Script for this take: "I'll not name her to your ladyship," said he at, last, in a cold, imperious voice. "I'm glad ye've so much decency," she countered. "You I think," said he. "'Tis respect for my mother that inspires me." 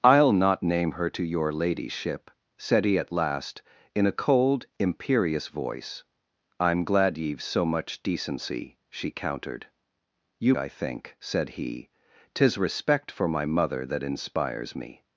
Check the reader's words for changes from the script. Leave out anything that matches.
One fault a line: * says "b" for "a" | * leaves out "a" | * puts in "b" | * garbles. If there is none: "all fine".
all fine